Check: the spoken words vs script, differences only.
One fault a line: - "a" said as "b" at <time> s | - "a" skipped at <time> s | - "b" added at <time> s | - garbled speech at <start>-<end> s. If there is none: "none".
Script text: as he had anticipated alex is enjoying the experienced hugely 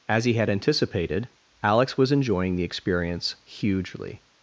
- "is" said as "was" at 2.0 s
- "experienced" said as "experience" at 2.6 s